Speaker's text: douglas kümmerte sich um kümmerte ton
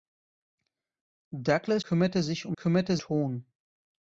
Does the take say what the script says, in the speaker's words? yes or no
yes